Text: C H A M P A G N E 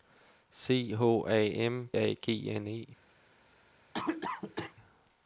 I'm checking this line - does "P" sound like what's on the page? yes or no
no